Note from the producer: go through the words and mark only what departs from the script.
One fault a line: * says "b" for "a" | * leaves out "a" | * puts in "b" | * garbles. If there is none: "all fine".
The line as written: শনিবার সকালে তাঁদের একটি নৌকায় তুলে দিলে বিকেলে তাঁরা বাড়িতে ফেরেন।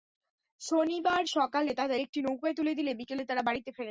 all fine